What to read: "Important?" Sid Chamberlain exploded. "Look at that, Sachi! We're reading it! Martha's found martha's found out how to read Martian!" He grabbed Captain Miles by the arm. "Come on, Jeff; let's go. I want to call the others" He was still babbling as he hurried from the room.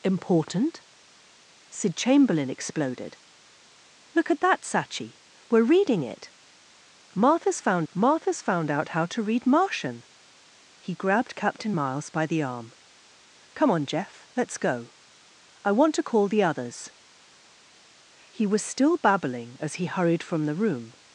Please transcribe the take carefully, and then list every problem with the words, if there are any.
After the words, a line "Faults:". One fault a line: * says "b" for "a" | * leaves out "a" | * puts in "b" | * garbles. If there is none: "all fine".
"Important?" Sid Chamberlain exploded. "Look at that, Sachi! We're reading it! Martha's found martha's found out how to read Martian!" He grabbed Captain Miles by the arm. "Come on, Jeff; let's go. I want to call the others" He was still babbling as he hurried from the room.
Faults:
all fine